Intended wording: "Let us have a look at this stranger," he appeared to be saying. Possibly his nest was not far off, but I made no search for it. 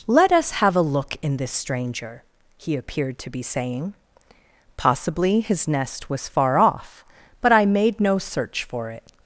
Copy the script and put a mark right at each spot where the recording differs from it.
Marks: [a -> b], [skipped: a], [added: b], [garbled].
"Let us have a look [at -> in] this stranger," he appeared to be saying. Possibly his nest was [skipped: not] far off, but I made no search for it.